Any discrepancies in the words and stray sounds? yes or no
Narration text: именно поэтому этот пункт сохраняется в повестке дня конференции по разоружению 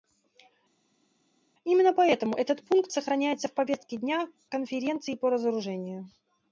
no